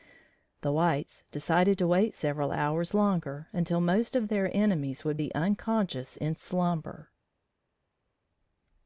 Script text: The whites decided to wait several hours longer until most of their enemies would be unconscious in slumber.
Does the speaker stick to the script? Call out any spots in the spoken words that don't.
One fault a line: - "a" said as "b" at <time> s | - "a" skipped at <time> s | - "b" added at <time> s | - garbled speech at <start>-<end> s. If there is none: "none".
none